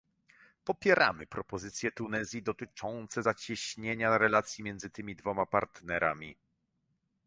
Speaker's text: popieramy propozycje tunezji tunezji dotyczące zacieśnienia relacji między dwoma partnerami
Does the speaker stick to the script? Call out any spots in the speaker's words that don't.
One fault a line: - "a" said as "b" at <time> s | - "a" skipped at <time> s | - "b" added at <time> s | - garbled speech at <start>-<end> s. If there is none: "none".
- "tunezji" skipped at 2.4 s
- "tymi" added at 4.9 s